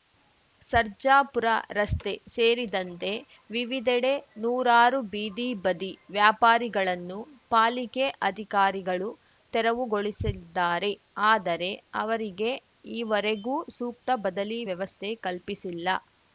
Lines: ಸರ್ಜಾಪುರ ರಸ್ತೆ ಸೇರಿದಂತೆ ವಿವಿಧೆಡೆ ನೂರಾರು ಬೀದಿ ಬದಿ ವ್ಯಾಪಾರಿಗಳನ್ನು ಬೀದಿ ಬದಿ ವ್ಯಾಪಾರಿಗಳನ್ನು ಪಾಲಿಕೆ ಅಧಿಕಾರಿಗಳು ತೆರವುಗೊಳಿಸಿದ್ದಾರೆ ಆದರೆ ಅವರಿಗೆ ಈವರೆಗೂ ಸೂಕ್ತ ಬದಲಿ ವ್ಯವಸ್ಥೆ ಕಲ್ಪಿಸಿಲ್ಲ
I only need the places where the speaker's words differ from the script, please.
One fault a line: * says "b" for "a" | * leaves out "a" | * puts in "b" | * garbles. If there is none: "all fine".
* leaves out "ಬೀದಿ ಬದಿ ವ್ಯಾಪಾರಿಗಳನ್ನು"